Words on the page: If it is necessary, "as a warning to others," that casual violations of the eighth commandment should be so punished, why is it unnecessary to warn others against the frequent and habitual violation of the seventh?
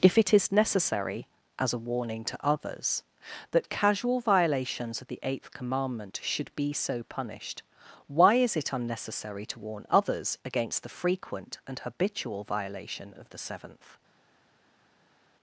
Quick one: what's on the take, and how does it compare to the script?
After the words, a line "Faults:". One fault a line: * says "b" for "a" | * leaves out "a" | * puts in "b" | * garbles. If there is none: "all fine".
If it is necessary, "as a warning to others," that casual violations of the eighth commandment should be so punished, why is it unnecessary to warn others against the frequent and habitual violation of the seventh?
Faults:
all fine